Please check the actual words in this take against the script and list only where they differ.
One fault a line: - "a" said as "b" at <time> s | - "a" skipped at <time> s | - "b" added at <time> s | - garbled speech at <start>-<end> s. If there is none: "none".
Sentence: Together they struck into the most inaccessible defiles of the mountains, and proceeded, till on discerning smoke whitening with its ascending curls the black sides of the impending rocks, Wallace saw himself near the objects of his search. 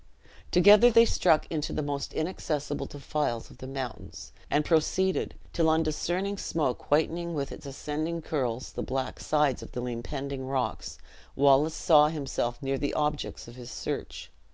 none